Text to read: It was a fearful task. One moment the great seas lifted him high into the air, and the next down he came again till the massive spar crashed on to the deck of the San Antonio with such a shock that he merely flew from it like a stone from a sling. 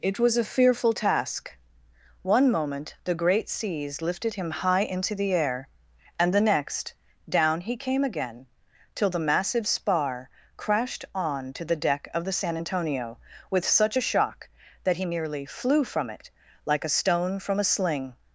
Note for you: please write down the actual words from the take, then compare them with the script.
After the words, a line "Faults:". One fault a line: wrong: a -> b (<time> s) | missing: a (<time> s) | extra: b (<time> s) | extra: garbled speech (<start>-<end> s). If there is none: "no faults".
It was a fearful task. One moment the great seas lifted him high into the air, and the next down he came again till the massive spar crashed on to the deck of the San Antonio with such a shock that he merely flew from it like a stone from a sling.
Faults:
no faults